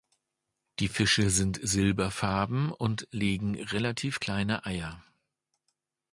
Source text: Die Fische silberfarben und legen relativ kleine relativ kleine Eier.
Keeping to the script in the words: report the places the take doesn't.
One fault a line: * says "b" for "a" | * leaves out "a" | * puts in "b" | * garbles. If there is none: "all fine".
* puts in "sind"
* leaves out "relativ kleine"